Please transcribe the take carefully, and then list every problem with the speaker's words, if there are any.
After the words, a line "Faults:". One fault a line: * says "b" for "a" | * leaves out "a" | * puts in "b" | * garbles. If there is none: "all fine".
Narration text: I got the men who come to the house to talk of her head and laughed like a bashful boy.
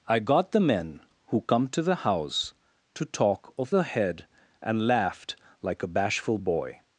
I got the men who come to the house to talk of her head and laughed like a bashful boy.
Faults:
all fine